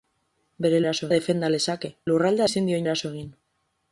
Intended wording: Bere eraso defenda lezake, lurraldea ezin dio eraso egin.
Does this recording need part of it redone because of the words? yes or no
no